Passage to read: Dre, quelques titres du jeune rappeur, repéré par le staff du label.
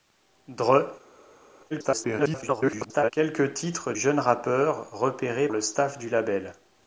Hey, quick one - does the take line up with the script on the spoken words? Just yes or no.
no